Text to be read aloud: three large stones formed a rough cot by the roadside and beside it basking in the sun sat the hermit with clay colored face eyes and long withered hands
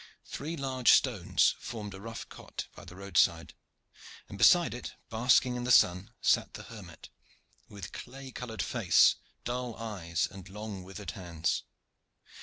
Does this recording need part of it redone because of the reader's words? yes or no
yes